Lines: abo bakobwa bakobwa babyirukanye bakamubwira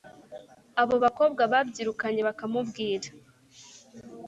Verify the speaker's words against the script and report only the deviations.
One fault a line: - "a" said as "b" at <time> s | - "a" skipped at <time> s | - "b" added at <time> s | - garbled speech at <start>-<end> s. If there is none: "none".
- "bakobwa" skipped at 1.4 s